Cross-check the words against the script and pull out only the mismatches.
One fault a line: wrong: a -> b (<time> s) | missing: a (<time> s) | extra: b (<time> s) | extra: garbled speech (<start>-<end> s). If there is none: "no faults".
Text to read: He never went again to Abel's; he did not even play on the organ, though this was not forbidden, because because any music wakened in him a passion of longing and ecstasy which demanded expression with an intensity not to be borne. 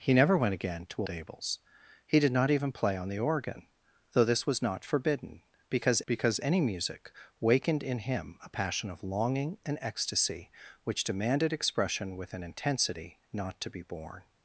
no faults